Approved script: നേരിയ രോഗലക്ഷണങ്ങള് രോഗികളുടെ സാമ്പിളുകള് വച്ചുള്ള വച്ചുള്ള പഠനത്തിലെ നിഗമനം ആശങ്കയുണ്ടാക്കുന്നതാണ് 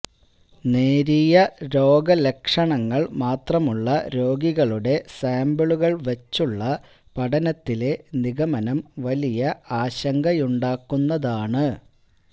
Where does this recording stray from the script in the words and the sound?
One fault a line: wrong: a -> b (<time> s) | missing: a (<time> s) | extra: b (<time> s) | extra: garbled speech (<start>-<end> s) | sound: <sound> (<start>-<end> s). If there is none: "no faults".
extra: മാത്രമുള്ള (3.2 s)
missing: വച്ചുള്ള (6.6 s)
extra: വലിയ (9.1 s)